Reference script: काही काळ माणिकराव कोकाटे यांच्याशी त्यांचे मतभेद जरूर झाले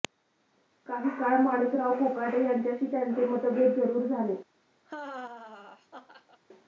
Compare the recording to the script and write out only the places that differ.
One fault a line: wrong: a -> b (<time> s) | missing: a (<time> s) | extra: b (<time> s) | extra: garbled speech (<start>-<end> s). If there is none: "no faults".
no faults